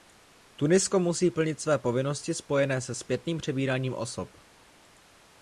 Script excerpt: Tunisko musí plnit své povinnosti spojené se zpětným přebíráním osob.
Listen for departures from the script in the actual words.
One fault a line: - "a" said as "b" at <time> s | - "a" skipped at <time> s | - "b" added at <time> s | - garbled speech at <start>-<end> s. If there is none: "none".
none